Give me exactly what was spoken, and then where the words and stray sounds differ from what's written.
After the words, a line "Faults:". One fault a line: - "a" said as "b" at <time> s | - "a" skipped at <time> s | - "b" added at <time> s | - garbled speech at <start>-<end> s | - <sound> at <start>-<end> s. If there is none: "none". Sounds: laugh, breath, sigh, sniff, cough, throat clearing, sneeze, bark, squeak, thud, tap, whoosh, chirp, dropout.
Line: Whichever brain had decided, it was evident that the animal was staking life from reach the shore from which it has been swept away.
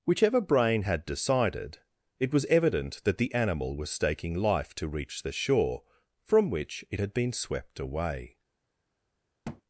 Whichever brain had decided, it was evident that the animal was staking life to reach the shore from which it had been swept away.
Faults:
- "from" said as "to" at 4.7 s
- "has" said as "had" at 7.0 s
- thud at 9.4-9.6 s